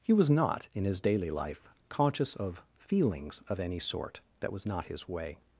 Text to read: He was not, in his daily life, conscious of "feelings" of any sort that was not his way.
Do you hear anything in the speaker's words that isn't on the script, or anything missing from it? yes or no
no